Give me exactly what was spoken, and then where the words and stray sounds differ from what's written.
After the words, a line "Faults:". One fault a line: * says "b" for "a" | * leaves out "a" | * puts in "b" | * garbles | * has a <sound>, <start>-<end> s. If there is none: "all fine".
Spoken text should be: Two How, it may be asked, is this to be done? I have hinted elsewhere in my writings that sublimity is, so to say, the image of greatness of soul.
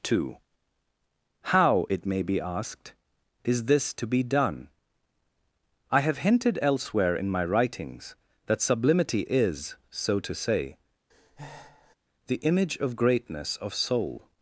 Two How, it may be asked, is this to be done? I have hinted elsewhere in my writings that sublimity is, so to say, the image of greatness of soul.
Faults:
* has a breath, 11.1-12.0 s